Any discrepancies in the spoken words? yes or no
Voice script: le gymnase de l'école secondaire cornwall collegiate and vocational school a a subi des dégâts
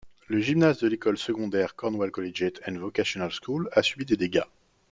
yes